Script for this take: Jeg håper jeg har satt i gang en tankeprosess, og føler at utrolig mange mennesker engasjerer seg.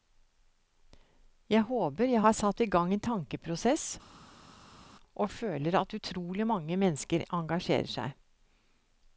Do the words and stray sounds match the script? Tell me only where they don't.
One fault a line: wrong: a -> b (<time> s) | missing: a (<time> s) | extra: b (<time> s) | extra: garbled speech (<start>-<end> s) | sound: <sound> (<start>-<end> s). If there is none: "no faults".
no faults